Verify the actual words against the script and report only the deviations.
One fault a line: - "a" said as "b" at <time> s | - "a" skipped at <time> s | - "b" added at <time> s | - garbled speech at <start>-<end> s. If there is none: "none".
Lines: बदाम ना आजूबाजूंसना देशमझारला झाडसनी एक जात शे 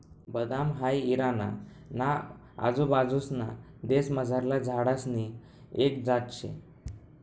- "हाई इराणा" added at 0.7 s